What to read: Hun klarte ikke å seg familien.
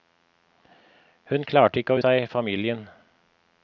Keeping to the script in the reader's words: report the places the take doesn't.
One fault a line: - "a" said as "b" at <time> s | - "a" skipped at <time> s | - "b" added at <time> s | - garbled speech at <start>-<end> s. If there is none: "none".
none